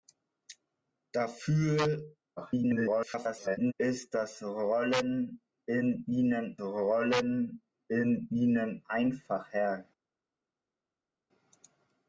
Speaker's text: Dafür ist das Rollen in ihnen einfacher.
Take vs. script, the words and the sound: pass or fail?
fail